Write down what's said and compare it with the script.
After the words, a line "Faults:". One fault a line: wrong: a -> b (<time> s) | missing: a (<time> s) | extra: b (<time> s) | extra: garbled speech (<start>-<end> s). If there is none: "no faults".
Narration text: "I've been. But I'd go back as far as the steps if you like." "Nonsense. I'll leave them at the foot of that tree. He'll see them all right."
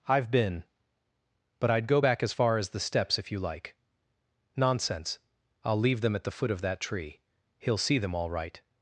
"I've been. But I'd go back as far as the steps if you like." "Nonsense. I'll leave them at the foot of that tree. He'll see them all right."
Faults:
no faults